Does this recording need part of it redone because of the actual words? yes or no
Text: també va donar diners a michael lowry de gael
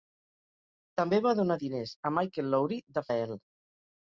no